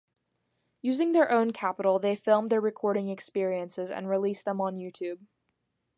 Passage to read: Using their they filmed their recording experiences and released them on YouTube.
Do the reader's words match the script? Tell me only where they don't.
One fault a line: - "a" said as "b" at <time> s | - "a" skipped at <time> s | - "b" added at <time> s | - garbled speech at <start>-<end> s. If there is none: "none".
- "own capital" added at 1.3 s